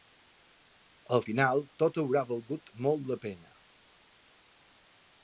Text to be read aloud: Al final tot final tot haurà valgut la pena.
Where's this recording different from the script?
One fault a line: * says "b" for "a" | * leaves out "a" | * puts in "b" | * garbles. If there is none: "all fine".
* leaves out "final tot"
* puts in "molt"